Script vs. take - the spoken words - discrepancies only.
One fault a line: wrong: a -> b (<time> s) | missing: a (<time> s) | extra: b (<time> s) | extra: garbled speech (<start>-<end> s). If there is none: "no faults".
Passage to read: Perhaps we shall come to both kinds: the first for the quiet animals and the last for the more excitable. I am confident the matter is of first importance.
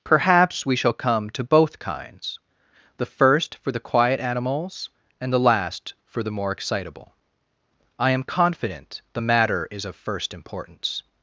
no faults